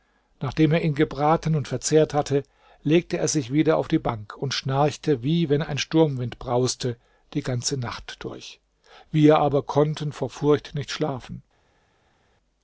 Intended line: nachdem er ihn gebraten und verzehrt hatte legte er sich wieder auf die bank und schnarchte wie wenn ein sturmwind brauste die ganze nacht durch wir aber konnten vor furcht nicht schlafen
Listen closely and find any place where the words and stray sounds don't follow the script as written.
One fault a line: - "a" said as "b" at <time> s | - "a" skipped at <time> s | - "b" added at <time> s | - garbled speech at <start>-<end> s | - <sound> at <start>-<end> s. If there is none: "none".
none